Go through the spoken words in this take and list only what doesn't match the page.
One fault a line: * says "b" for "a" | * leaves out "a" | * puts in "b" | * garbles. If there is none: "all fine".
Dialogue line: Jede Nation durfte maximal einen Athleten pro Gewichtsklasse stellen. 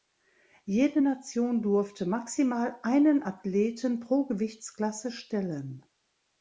all fine